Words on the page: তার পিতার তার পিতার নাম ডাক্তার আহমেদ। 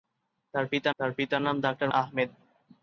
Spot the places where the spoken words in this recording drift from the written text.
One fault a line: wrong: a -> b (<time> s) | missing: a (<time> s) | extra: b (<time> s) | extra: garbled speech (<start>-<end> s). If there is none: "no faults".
no faults